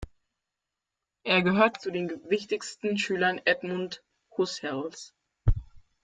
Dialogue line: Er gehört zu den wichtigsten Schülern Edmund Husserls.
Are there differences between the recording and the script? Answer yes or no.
no